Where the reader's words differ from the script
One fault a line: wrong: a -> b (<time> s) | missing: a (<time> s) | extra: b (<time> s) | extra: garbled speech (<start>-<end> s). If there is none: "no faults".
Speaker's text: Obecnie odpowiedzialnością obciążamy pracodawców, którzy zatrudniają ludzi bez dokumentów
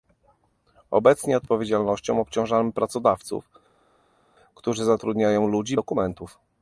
missing: bez (5.8 s)